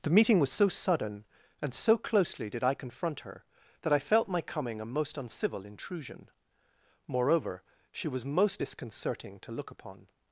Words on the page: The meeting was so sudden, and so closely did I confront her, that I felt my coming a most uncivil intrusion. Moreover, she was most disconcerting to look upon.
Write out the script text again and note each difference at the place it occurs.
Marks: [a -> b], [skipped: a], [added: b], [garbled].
The meeting was so sudden, and so closely did I confront her, that I felt my coming a most uncivil intrusion. Moreover, she was most disconcerting to look upon.